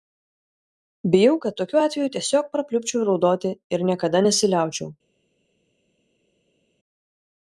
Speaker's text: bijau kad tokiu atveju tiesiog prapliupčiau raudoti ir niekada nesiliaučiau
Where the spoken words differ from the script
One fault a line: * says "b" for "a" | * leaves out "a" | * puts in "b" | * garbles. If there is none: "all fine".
all fine